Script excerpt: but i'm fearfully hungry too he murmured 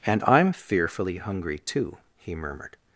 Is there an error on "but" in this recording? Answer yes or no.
yes